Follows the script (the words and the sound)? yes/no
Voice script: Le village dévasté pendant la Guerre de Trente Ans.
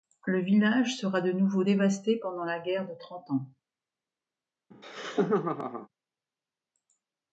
no